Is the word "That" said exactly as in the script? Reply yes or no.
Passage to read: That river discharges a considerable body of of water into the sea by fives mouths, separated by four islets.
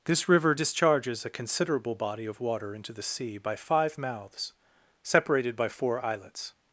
no